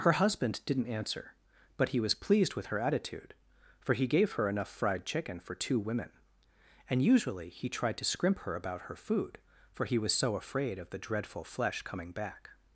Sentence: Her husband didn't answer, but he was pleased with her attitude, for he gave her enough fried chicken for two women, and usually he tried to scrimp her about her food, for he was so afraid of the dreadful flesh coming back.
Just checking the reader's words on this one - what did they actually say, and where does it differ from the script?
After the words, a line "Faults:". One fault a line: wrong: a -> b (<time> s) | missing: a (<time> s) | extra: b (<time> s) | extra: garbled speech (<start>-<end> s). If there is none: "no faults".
Her husband didn't answer, but he was pleased with her attitude, for he gave her enough fried chicken for two women, and usually he tried to scrimp her about her food, for he was so afraid of the dreadful flesh coming back.
Faults:
no faults